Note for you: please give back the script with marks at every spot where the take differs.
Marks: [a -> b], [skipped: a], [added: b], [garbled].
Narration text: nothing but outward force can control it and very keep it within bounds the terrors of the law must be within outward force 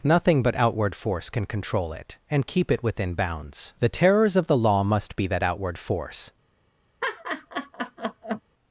nothing but outward force can control it and [skipped: very] keep it within bounds the terrors of the law must be [within -> that] outward force